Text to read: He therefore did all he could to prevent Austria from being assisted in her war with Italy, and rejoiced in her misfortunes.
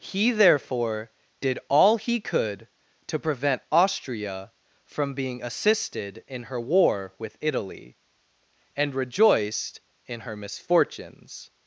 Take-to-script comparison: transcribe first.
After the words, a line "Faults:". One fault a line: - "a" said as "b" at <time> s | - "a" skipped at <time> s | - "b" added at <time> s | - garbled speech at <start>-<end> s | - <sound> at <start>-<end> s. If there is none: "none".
He therefore did all he could to prevent Austria from being assisted in her war with Italy, and rejoiced in her misfortunes.
Faults:
none